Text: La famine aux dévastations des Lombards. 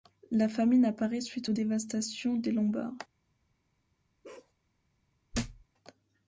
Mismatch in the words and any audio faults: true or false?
true